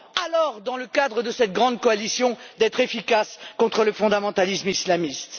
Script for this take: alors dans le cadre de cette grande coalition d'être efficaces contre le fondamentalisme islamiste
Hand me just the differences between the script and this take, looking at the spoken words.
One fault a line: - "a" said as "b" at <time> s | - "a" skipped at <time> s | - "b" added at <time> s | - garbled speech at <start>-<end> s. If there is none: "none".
none